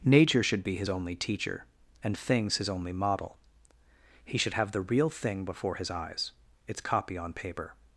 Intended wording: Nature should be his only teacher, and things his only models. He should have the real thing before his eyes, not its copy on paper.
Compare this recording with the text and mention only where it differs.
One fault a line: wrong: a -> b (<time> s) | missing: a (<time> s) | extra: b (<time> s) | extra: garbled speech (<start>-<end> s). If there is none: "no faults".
wrong: models -> model (2.9 s)
missing: not (6.3 s)